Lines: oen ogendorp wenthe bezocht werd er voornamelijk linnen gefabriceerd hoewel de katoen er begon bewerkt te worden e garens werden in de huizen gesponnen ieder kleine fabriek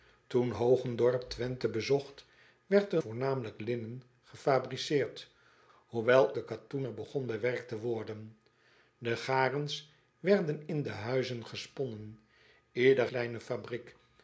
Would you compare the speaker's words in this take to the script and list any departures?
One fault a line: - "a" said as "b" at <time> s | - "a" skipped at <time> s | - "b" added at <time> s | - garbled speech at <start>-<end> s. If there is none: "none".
none